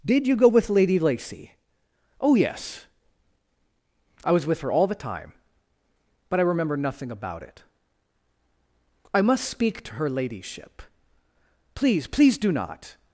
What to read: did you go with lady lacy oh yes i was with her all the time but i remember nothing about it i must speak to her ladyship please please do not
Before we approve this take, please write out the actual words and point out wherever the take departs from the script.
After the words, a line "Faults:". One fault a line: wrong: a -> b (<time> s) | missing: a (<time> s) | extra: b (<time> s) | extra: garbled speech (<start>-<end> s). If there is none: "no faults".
did you go with lady lacy oh yes i was with her all the time but i remember nothing about it i must speak to her ladyship please please do not
Faults:
no faults